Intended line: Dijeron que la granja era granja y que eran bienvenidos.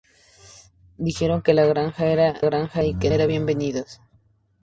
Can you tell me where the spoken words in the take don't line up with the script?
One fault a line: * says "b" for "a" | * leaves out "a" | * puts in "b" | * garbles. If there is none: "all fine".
all fine